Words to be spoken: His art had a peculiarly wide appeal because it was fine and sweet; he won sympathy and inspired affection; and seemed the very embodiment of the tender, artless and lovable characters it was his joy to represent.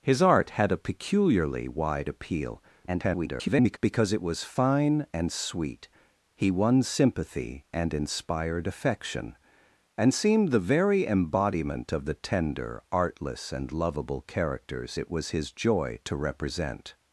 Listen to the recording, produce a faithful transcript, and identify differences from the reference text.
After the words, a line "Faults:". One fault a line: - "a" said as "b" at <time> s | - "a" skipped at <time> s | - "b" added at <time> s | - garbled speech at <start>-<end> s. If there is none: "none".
His art had a peculiarly wide appeal [garbled] because it was fine and sweet; he won sympathy and inspired affection; and seemed the very embodiment of the tender, artless and lovable characters it was his joy to represent.
Faults:
- garbled speech at 2.9-3.8 s